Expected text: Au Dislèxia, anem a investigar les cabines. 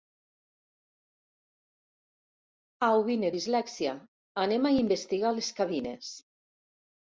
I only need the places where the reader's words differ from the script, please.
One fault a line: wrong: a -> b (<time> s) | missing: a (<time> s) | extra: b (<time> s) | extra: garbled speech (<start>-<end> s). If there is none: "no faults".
extra: vine (3.1 s)